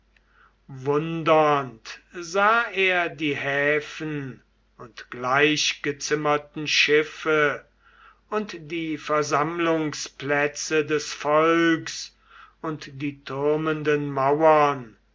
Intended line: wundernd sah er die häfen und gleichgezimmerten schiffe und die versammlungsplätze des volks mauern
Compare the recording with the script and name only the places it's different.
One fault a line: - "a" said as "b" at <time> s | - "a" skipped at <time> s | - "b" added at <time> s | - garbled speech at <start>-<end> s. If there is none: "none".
- "und die türmenden" added at 12.6 s